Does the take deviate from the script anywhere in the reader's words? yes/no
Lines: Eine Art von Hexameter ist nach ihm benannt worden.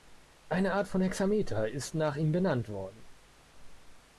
no